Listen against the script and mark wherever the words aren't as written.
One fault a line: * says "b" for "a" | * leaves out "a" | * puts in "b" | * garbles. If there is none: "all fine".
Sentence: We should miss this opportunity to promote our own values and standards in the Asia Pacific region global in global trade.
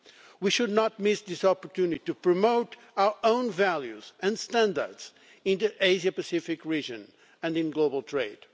* puts in "not"
* says "and" for "global"